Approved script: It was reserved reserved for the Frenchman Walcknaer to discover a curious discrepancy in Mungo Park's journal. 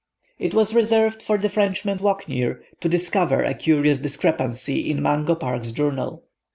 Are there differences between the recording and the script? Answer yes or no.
yes